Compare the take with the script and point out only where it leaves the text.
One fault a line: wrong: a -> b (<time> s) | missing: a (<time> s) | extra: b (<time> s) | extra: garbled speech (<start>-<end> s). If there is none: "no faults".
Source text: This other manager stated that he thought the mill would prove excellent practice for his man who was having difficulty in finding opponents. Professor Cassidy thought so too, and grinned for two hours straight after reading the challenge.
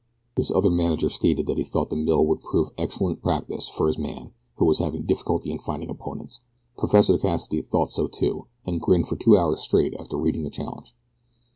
no faults